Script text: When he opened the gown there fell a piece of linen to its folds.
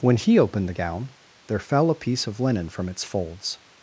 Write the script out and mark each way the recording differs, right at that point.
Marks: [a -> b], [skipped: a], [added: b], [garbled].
When he opened the gown there fell a piece of linen [to -> from] its folds.